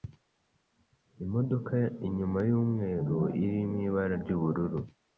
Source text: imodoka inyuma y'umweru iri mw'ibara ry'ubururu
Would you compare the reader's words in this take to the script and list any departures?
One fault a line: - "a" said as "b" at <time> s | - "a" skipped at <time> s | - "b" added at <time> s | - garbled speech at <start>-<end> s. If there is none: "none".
none